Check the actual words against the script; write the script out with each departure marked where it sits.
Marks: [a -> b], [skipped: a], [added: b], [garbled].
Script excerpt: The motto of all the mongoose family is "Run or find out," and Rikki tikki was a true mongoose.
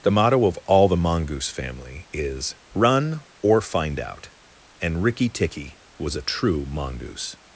The motto of all the mongoose family is "Run or find out," and Rikki tikki was a true mongoose.